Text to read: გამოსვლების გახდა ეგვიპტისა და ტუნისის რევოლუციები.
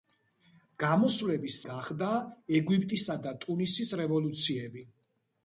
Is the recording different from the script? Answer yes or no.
no